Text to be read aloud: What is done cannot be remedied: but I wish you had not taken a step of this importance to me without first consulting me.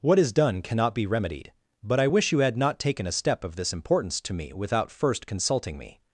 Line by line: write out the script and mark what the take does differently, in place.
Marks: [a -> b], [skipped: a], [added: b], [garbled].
What is done cannot be remedied: but I wish you had not taken a step of this importance to me without first consulting me.